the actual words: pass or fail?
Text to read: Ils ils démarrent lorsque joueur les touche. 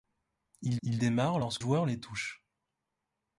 pass